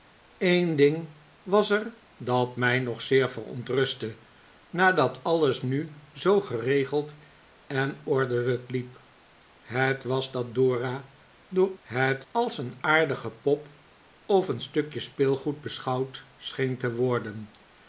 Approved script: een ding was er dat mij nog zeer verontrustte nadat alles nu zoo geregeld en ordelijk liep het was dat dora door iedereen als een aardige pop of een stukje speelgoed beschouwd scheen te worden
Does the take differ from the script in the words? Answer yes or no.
yes